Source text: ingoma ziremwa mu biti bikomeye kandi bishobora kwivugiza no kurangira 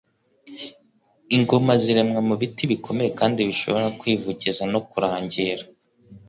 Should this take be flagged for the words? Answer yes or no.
no